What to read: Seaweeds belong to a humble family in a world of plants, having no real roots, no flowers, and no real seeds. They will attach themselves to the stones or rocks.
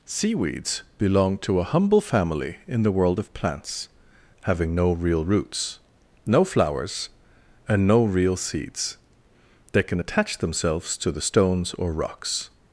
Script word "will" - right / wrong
wrong